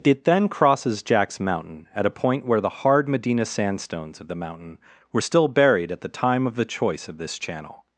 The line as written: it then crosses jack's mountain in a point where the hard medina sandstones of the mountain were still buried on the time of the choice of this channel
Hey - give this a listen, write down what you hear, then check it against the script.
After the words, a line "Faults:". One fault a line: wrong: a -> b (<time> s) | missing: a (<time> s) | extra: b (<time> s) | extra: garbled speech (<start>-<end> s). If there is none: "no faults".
it then crosses jack's mountain at a point where the hard medina sandstones of the mountain were still buried at the time of the choice of this channel
Faults:
wrong: in -> at (1.9 s)
wrong: on -> at (5.9 s)